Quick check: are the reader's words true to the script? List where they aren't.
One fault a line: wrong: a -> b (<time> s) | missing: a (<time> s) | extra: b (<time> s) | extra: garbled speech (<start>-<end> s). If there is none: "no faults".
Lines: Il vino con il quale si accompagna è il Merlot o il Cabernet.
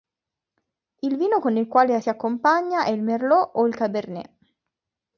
no faults